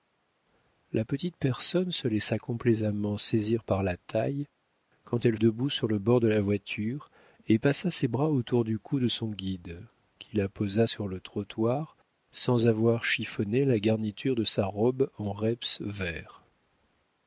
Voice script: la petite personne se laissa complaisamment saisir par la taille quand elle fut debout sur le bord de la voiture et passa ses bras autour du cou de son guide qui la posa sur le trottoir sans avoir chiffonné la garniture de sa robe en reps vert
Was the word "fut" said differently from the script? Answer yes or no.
yes